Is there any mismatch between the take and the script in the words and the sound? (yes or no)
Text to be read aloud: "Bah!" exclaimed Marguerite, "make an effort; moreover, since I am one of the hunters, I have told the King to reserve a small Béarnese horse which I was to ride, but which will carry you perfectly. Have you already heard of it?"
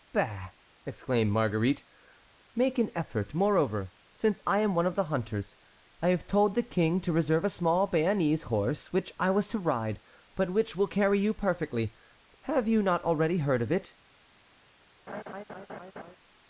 yes